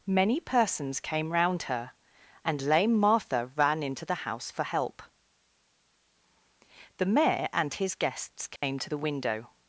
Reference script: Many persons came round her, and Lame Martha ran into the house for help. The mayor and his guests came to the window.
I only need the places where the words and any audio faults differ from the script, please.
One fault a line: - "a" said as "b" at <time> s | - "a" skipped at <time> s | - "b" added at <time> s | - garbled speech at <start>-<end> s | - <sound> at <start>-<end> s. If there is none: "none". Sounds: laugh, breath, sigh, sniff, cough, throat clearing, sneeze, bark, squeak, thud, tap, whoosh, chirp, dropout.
- dropout at 8.6-8.6 s